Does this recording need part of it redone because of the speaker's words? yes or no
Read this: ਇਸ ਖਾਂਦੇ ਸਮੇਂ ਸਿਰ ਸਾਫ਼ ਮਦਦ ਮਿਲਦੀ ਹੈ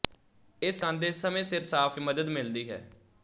no